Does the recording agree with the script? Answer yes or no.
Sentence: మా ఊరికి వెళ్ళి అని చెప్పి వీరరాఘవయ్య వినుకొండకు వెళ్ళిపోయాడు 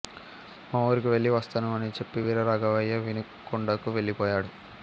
no